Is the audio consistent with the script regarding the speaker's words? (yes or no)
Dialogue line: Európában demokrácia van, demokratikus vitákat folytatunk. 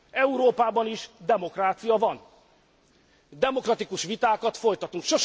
no